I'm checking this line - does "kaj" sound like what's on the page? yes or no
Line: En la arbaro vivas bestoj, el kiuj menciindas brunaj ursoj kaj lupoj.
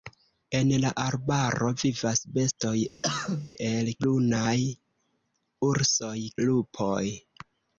no